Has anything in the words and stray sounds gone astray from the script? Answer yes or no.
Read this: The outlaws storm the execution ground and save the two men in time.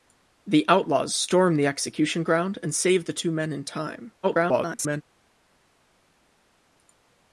yes